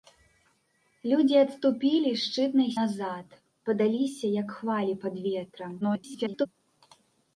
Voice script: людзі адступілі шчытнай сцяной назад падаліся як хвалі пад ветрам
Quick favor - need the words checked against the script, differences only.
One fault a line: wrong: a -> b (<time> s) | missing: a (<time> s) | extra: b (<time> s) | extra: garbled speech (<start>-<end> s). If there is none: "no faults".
missing: сцяной (2.7 s)
extra: garbled speech (5.8-6.5 s)